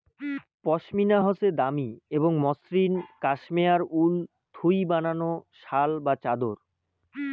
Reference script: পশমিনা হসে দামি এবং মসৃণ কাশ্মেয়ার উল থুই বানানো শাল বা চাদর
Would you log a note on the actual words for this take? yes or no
no